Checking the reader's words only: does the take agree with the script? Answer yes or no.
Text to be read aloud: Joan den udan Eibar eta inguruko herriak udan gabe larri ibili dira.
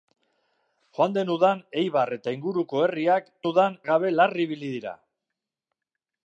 yes